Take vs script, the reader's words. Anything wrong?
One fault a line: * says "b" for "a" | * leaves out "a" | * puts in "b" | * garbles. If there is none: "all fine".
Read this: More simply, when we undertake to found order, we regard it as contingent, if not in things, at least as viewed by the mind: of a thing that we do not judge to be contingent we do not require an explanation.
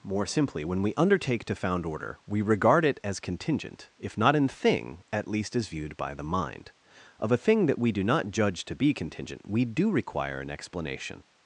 * says "thing" for "things"
* leaves out "not"